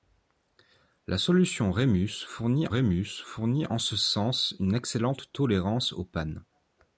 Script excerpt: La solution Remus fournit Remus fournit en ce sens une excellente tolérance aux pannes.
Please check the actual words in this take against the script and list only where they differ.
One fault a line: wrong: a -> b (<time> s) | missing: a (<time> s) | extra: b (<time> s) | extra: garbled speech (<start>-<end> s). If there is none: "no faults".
no faults